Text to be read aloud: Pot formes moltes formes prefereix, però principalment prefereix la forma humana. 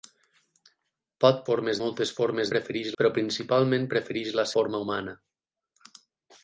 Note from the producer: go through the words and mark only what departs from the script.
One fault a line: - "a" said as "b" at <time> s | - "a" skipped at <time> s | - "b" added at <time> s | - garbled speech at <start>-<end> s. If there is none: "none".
none